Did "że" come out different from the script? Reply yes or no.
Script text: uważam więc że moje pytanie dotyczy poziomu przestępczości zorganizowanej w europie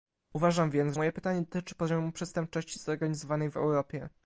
yes